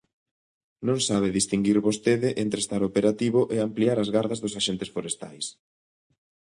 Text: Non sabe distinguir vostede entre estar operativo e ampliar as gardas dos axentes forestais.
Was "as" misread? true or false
false